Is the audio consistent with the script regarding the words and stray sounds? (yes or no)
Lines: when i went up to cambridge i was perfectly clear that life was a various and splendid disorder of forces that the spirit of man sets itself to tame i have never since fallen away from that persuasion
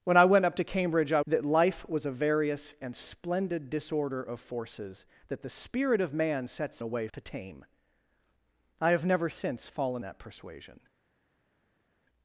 no